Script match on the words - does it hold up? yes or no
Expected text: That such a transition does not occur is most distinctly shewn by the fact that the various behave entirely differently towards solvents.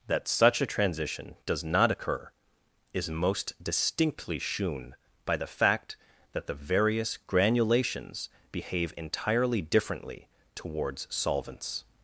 no